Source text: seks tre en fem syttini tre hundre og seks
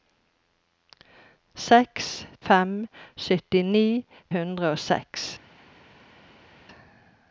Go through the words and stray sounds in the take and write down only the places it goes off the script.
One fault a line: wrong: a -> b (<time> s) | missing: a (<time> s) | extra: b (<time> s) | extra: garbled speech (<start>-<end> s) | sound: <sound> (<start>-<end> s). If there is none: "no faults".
missing: tre en (2.1 s)
missing: tre (3.9 s)